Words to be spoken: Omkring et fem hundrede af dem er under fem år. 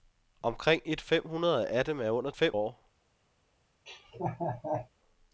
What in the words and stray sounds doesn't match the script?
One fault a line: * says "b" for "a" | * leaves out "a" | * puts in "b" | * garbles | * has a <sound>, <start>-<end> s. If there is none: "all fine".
* has a laugh, 3.9-4.9 s